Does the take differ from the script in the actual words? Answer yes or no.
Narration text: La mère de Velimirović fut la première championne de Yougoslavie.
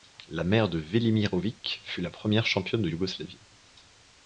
no